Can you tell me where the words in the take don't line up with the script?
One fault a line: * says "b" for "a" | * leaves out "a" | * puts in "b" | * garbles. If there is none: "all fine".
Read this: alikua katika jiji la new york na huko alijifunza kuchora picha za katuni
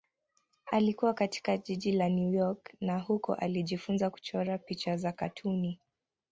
all fine